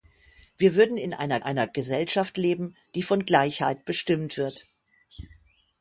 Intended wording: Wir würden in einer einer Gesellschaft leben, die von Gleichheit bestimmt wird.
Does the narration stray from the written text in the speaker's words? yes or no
no